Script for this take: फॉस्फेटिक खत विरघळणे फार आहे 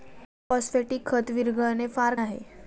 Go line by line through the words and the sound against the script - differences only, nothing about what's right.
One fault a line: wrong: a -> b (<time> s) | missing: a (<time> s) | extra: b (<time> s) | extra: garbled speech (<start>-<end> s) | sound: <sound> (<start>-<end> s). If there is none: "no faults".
no faults